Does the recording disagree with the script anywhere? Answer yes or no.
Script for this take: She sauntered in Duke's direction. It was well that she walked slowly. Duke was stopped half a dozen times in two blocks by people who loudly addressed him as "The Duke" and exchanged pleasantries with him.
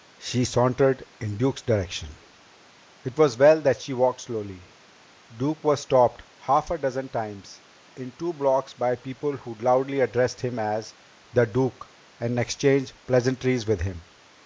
no